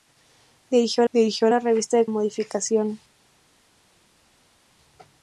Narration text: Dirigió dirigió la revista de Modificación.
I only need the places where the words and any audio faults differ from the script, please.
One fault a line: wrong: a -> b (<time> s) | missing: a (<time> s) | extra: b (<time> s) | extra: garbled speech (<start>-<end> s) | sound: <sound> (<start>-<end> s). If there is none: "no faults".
no faults